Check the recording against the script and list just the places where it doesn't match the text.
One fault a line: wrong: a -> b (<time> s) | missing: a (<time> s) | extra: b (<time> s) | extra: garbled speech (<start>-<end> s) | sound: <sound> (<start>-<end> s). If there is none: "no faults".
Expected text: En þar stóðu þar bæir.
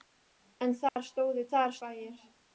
sound: dropout (0.9-1.0 s)